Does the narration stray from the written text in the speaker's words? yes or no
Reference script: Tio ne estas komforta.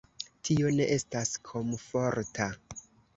no